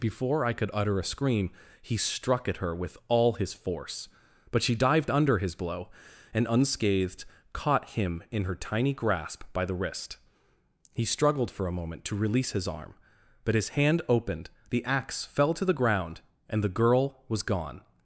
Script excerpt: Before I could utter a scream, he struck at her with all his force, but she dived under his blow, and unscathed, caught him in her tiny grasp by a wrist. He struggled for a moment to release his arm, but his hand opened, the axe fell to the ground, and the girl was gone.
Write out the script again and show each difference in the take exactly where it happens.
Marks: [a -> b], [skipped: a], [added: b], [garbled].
Before I could utter a scream, he struck at her with all his force, but she dived under his blow, and unscathed, caught him in her tiny grasp by [a -> the] wrist. He struggled for a moment to release his arm, but his hand opened, the axe fell to the ground, and the girl was gone.